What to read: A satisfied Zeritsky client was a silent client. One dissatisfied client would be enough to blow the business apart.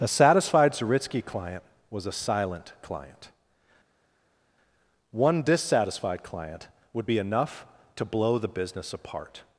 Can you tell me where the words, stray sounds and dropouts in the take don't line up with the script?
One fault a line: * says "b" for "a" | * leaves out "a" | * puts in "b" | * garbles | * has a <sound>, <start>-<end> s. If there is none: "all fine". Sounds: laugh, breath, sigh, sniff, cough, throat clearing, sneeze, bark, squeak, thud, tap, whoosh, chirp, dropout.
all fine